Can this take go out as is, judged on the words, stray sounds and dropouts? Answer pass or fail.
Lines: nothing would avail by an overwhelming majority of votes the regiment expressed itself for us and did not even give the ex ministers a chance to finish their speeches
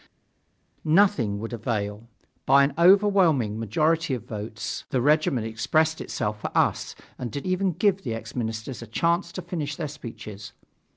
fail